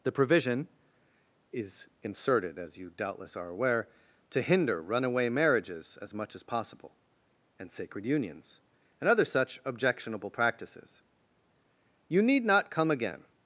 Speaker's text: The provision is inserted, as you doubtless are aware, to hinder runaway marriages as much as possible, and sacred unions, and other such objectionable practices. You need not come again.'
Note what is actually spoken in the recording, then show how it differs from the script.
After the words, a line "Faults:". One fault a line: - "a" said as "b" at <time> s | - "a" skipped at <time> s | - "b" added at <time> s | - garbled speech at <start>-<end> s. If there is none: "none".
The provision is inserted, as you doubtless are aware, to hinder runaway marriages as much as possible, and sacred unions, and other such objectionable practices. You need not come again.'
Faults:
none